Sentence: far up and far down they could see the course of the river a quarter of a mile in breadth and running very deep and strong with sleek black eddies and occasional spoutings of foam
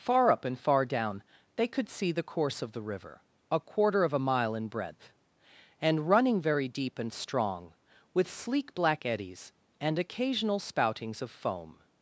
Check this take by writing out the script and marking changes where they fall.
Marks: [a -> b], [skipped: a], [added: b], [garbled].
far up and far down they could see the course of the river a quarter of a mile in breadth and running very deep and strong with sleek black eddies and occasional spoutings of foam